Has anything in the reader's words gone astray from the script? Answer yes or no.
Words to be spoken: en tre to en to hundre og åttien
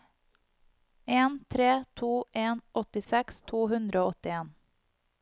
yes